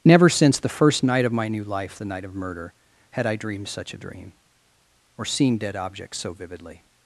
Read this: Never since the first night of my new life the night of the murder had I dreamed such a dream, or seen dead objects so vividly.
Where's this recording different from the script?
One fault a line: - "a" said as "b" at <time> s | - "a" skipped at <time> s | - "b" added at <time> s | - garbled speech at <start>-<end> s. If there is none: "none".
- "the" skipped at 2.3 s